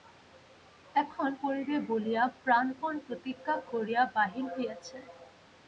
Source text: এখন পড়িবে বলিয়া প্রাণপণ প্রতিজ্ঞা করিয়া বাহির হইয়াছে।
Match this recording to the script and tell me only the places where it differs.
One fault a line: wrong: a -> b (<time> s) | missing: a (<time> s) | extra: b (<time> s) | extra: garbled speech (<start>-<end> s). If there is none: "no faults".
no faults